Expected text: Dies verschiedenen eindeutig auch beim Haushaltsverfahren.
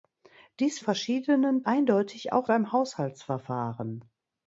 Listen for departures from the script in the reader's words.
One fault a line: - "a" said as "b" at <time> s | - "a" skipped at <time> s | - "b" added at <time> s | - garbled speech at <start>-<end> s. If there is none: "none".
none